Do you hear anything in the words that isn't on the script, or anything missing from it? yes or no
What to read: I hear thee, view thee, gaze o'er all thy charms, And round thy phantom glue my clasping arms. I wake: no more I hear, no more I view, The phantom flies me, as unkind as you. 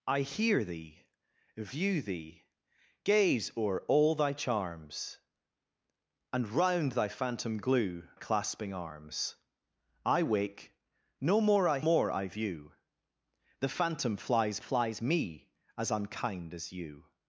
yes